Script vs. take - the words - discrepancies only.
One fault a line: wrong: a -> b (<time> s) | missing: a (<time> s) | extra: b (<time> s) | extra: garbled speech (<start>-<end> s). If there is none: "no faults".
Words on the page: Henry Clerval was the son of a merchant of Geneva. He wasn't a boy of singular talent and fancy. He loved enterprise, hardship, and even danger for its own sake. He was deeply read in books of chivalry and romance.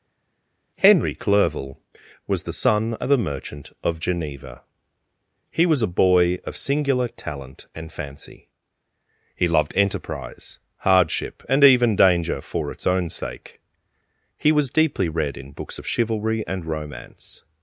wrong: wasn't -> was (5.7 s)